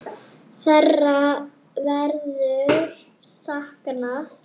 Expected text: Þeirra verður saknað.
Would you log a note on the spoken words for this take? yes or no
no